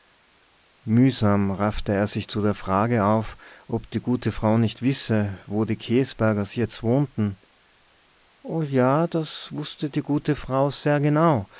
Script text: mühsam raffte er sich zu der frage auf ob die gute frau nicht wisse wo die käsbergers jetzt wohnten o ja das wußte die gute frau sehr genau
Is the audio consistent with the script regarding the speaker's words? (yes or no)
yes